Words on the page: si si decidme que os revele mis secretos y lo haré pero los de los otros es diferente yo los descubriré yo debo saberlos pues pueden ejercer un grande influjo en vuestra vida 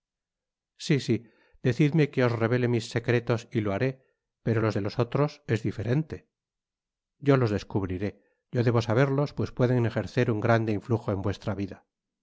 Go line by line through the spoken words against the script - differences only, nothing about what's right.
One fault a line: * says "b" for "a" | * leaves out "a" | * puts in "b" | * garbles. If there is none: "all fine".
all fine